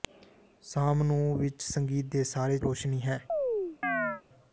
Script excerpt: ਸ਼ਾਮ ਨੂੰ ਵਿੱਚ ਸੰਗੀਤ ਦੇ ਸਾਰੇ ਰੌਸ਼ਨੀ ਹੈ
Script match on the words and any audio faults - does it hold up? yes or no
no